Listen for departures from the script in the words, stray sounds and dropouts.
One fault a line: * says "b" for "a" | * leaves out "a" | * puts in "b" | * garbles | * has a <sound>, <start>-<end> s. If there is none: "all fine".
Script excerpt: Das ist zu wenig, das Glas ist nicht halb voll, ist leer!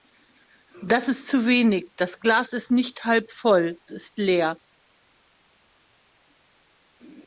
all fine